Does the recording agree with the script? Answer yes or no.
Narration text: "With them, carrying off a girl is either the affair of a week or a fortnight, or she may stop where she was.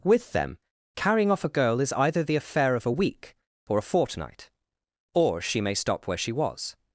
yes